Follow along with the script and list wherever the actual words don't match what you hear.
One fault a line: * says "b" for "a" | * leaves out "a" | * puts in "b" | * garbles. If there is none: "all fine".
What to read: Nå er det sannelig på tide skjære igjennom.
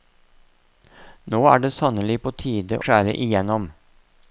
all fine